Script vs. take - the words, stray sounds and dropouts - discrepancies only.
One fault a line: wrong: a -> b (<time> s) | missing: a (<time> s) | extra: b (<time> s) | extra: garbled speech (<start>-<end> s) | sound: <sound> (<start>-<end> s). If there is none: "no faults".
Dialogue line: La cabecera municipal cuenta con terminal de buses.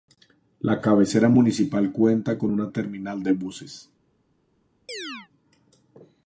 extra: una (2.5 s)
sound: chirp (4.9-5.3 s)